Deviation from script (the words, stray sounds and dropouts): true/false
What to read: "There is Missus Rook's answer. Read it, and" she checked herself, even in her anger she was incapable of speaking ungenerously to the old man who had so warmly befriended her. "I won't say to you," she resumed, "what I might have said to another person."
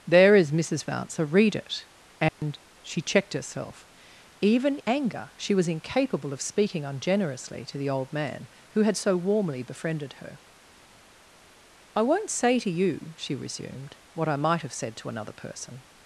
true